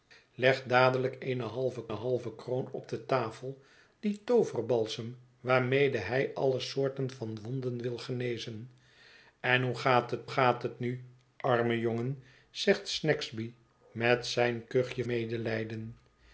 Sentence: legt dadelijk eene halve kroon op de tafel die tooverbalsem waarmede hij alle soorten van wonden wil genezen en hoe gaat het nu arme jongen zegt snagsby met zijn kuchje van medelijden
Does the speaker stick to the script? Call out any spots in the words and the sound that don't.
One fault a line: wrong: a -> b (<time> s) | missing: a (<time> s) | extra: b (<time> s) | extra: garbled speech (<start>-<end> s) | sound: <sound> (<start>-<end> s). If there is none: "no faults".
extra: halve (1.9 s)
extra: gaat het (10.3 s)
missing: van (15.0 s)